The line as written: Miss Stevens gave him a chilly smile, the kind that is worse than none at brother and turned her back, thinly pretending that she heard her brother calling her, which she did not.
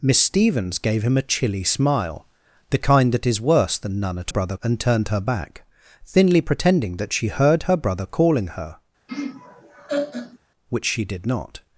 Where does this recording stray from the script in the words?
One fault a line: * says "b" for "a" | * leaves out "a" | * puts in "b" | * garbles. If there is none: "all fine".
all fine